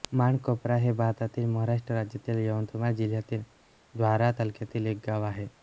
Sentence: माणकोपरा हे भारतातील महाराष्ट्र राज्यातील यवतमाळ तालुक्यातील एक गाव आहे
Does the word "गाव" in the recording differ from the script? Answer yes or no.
no